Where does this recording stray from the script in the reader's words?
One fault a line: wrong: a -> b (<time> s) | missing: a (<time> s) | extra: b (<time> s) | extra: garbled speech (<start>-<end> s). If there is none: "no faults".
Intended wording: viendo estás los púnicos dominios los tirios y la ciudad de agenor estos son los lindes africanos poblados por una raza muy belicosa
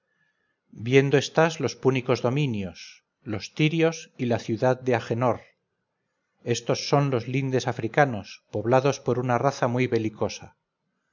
no faults